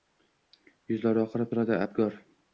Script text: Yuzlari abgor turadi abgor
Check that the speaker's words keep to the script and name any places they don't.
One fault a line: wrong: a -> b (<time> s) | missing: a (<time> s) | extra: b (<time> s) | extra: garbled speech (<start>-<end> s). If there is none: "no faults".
wrong: abgor -> oqarib (1.2 s)